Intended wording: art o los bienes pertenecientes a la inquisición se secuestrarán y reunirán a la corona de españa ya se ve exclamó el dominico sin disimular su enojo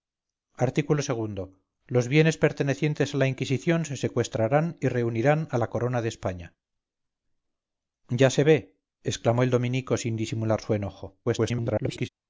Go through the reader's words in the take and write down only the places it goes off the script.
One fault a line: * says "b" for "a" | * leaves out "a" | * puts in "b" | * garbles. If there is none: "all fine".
* garbles